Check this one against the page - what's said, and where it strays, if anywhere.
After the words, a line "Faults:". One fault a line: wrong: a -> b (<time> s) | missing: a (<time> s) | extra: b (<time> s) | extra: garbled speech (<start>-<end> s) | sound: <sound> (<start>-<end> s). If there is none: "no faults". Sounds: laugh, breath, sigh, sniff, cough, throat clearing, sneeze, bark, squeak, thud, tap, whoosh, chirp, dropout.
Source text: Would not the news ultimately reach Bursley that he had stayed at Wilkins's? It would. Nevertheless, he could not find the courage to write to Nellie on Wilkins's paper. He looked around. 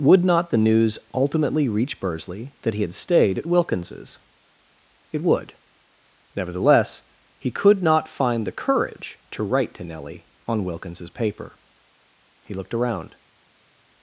Would not the news ultimately reach Bursley that he had stayed at Wilkins's? It would. Nevertheless, he could not find the courage to write to Nellie on Wilkins's paper. He looked around.
Faults:
no faults